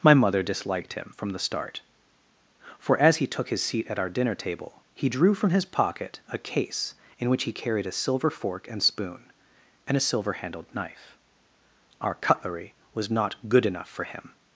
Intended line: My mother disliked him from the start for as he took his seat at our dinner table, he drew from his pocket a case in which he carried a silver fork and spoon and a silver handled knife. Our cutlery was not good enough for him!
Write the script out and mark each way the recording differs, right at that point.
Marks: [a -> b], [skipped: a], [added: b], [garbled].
My mother disliked him from the start for as he took his seat at our dinner table, he drew from his pocket a case in which he carried a silver fork and spoon and a silver handled knife. Our cutlery was not good enough for him!